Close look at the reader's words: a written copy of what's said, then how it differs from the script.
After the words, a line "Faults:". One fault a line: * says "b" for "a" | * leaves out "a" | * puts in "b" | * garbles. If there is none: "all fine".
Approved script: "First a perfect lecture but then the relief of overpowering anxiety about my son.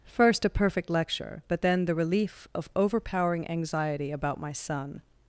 "First a perfect lecture but then the relief of overpowering anxiety about my son.
Faults:
all fine